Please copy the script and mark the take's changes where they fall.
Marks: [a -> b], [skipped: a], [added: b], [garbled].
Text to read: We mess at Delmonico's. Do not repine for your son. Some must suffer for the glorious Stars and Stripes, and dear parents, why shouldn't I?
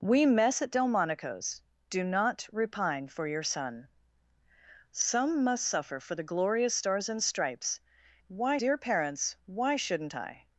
We mess at Delmonico's. Do not repine for your son. Some must suffer for the glorious Stars and Stripes, [and -> why] dear parents, why shouldn't I?